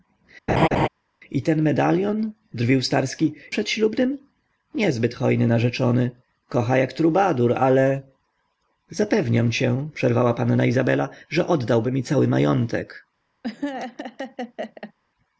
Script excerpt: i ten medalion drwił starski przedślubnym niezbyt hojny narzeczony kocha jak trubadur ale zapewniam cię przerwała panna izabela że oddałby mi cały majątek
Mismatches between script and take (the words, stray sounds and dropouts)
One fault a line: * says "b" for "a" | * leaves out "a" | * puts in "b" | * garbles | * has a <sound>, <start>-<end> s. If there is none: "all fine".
* has a laugh, 0.5-0.9 s
* has a laugh, 13.4-14.9 s